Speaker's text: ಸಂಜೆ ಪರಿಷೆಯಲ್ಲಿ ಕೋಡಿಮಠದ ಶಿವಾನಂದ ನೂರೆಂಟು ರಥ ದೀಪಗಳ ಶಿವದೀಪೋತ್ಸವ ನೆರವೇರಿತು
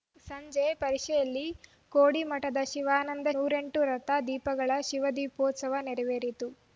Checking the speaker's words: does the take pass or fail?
pass